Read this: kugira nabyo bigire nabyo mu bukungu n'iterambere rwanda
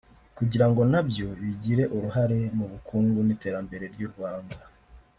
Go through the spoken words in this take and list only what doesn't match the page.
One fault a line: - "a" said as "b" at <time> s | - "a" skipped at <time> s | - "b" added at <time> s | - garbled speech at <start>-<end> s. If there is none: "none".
- "ngo" added at 0.7 s
- "nabyo" said as "uruhare" at 1.9 s
- "ry'u" added at 3.9 s